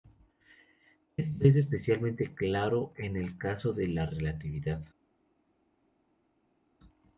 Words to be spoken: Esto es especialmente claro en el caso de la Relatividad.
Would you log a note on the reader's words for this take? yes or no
no